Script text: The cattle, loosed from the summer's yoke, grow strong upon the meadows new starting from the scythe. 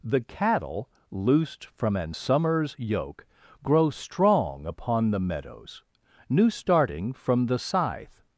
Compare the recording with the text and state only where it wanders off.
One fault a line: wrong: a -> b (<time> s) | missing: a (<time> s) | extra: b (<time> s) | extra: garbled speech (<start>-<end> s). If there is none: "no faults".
wrong: the -> an (1.9 s)